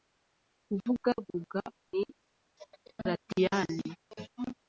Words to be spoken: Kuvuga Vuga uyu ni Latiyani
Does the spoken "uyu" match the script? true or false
false